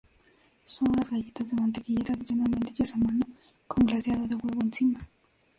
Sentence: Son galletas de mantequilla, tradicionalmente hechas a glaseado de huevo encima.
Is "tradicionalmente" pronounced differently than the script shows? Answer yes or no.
no